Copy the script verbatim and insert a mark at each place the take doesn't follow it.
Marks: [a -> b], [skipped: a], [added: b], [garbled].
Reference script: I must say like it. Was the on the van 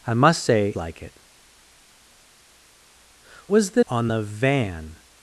I must say like it. Was the on the van